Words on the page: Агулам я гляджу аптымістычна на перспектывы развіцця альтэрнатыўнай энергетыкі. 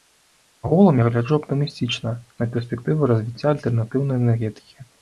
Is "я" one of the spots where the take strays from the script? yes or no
no